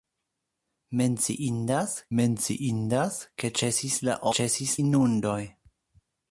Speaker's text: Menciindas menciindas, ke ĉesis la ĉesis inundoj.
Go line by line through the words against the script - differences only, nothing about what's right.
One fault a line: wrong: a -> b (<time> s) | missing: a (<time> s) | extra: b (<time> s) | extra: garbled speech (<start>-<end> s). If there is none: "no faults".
no faults